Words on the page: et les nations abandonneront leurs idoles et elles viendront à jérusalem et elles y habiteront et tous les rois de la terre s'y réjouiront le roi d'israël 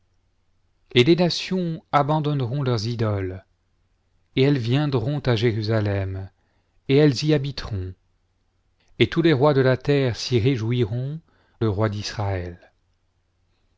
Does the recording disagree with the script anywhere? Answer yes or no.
no